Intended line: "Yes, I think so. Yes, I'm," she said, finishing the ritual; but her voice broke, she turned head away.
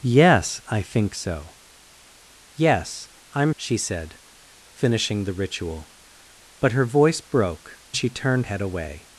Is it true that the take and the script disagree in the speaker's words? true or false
false